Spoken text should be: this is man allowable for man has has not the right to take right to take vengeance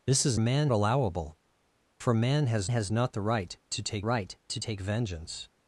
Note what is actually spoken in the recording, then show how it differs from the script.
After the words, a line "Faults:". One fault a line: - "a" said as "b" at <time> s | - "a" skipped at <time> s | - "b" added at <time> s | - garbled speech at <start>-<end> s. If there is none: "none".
this is man allowable for man has has not the right to take right to take vengeance
Faults:
none